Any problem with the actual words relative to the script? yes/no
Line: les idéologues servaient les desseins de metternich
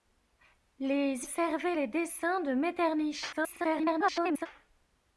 yes